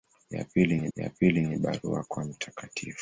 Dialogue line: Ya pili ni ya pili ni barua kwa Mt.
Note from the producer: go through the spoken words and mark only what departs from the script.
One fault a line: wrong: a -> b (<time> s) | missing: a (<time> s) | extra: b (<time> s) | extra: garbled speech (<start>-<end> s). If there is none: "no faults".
no faults